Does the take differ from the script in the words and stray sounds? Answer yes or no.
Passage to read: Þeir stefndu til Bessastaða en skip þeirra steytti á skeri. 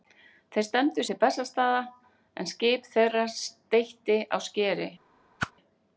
yes